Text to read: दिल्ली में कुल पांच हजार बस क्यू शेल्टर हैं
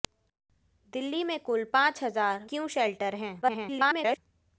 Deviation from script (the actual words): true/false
true